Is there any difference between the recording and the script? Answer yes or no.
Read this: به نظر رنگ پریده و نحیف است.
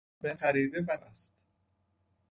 yes